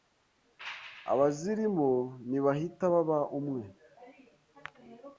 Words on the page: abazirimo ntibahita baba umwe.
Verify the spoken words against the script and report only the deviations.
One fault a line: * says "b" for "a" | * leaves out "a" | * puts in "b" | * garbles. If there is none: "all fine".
all fine